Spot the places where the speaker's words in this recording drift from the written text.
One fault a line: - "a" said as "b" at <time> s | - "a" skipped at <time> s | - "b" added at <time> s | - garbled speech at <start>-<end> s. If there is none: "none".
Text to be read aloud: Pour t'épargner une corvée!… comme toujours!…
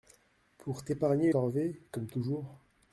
- "une" skipped at 1.3 s